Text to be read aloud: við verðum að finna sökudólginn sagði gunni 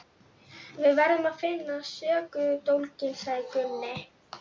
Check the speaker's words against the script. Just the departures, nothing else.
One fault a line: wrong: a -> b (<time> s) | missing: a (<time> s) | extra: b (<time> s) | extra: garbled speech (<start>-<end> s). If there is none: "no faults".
no faults